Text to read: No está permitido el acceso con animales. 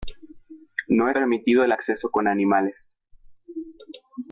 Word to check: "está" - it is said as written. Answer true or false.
false